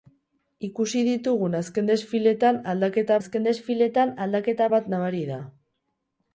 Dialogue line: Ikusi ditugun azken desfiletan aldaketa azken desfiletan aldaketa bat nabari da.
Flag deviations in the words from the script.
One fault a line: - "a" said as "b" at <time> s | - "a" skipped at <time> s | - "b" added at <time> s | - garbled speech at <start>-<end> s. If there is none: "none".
none